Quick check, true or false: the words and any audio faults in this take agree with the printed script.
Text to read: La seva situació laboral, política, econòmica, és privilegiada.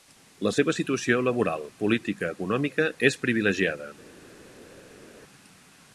true